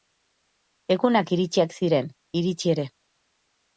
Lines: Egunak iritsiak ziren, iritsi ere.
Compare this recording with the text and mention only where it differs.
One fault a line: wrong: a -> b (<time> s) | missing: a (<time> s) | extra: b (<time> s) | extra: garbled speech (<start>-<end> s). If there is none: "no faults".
no faults